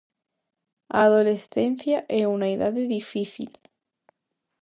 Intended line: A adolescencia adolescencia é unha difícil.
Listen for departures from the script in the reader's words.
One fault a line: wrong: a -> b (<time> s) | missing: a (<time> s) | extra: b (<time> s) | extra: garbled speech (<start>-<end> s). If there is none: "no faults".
missing: adolescencia (2.0 s)
extra: idade (2.6 s)